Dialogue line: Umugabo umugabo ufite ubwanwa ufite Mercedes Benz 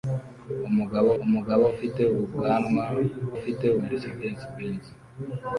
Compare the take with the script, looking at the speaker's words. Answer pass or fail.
pass